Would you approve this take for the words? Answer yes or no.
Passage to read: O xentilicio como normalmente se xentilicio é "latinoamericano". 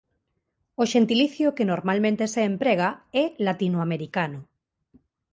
no